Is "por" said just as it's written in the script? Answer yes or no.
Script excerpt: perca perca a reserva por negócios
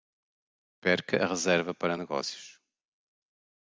no